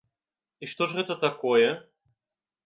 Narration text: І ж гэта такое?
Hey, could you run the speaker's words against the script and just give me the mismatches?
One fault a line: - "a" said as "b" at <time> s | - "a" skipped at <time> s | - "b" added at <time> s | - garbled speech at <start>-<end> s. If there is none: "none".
- "што" added at 0.7 s